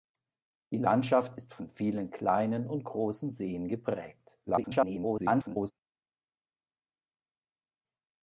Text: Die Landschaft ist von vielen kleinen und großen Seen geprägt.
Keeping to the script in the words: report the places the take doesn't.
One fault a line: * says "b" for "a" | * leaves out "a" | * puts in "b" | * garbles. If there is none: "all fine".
* garbles